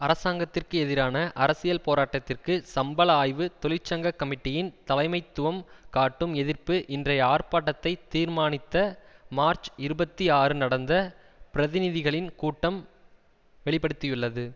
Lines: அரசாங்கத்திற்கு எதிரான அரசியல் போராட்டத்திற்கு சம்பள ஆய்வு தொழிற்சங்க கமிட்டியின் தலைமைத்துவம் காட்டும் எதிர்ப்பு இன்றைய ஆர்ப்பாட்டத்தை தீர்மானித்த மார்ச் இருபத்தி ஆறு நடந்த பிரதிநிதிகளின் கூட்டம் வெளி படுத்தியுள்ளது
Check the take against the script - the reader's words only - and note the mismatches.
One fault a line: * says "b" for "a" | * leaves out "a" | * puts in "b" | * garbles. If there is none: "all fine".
all fine